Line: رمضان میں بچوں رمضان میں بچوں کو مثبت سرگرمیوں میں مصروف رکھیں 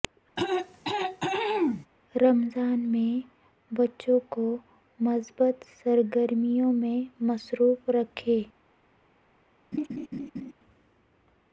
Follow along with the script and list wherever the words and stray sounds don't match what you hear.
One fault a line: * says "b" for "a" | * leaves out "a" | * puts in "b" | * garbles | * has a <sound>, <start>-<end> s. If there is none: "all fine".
* has a throat clearing, 0.4-1.9 s
* leaves out "رمضان میں بچوں"
* has a laugh, 9.7-10.5 s